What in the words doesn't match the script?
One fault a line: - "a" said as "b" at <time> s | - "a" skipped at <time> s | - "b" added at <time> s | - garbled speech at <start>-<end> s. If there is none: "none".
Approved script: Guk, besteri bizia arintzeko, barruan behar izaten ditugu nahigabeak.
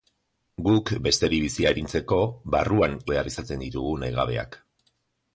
none